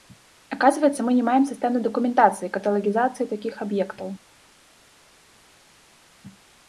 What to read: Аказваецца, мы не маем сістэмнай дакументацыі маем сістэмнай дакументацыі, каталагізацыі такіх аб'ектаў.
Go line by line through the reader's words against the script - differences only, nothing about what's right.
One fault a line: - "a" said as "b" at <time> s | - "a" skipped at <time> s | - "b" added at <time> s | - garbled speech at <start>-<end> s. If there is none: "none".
- "маем сістэмнай дакументацыі" skipped at 2.5 s